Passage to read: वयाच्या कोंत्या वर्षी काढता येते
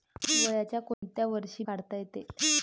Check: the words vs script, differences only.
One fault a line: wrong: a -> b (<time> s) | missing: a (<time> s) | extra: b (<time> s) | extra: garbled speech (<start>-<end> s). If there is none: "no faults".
no faults